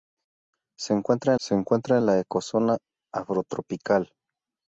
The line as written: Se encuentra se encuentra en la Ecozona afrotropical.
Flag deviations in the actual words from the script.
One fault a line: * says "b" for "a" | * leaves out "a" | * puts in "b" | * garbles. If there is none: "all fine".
all fine